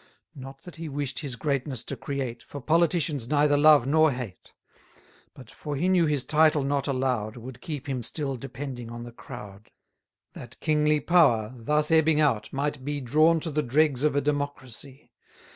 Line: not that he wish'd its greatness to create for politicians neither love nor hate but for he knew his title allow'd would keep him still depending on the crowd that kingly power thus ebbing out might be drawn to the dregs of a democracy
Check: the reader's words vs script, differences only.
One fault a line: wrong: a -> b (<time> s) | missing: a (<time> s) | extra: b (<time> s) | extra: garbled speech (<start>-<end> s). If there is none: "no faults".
wrong: its -> his (1.2 s)
extra: not (6.6 s)